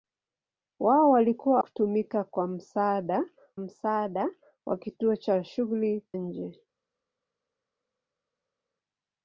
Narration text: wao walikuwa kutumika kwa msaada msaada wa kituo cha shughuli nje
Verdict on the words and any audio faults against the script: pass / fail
pass